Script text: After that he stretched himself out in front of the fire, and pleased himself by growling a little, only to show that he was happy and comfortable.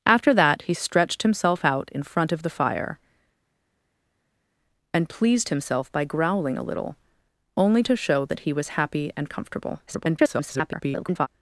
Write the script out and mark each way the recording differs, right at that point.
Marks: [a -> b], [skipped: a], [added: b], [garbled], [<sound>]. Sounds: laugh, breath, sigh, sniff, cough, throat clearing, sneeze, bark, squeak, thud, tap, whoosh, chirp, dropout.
After that he stretched himself out in front of the fire, and pleased himself by growling a little, only to show that he was happy and comfortable. [garbled]